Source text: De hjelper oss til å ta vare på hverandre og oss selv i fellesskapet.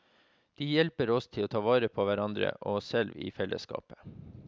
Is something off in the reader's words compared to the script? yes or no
no